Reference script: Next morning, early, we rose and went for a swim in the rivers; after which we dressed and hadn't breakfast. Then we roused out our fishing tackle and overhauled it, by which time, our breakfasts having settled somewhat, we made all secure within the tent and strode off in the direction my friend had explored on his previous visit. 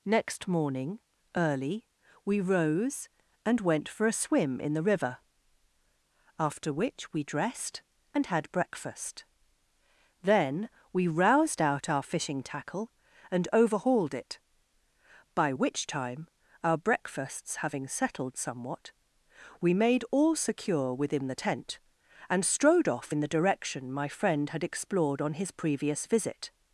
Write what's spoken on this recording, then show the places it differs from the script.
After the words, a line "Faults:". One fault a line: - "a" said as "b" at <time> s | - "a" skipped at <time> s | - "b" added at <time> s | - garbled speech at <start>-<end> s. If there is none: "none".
Next morning, early, we rose and went for a swim in the river; after which we dressed and had breakfast. Then we roused out our fishing tackle and overhauled it, by which time, our breakfasts having settled somewhat, we made all secure within the tent and strode off in the direction my friend had explored on his previous visit.
Faults:
- "rivers" said as "river" at 4.8 s
- "hadn't" said as "had" at 8.2 s